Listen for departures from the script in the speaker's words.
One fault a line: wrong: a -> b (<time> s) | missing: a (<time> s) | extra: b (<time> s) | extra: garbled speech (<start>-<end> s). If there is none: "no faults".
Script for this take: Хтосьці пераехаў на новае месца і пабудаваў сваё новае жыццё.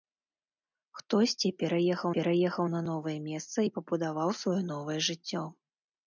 extra: пераехаў (2.1 s)